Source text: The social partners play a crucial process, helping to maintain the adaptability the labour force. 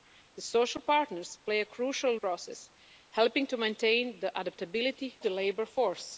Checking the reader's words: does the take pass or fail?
pass